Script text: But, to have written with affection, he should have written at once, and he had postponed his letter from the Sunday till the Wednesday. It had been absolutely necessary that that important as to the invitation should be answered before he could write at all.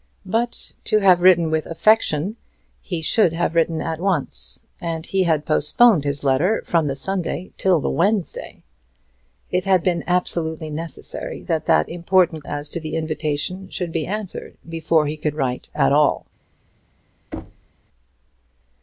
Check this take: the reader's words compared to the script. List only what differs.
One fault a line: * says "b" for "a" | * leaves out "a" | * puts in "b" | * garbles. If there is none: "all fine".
all fine